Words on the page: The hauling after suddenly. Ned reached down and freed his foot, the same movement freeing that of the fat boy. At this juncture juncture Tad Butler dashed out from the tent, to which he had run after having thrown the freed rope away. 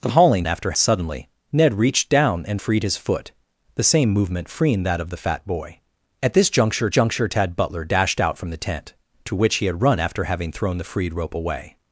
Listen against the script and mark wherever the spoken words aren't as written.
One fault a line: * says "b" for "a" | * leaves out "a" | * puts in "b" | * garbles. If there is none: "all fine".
all fine